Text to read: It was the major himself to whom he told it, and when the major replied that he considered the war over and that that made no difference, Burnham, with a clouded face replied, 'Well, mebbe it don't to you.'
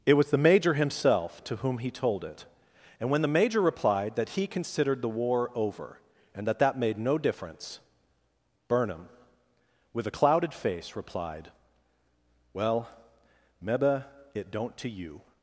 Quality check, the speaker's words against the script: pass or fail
pass